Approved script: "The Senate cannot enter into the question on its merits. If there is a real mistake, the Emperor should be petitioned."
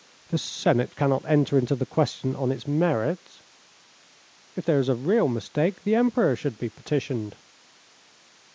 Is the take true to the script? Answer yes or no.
yes